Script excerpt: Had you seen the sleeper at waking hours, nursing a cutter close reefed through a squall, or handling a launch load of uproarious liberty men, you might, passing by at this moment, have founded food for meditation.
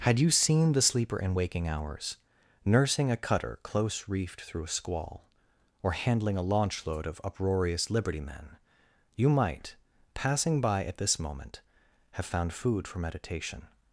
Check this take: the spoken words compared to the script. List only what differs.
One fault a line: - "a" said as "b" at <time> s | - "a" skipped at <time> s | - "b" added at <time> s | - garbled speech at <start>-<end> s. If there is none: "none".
- "at" said as "in" at 1.2 s
- "founded" said as "found" at 12.2 s